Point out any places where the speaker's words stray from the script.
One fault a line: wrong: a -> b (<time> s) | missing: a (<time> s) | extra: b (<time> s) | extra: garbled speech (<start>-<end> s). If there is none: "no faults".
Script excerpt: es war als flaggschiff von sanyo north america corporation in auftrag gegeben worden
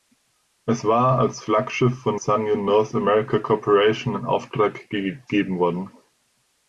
no faults